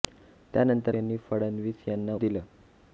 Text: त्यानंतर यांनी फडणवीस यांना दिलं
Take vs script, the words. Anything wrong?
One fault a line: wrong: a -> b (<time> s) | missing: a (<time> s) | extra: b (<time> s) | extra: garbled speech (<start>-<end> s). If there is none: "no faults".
no faults